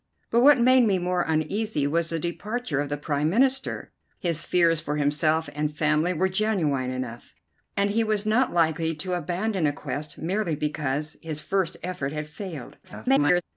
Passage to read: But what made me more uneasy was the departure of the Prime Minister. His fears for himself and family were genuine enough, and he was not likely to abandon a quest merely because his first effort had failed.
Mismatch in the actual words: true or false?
true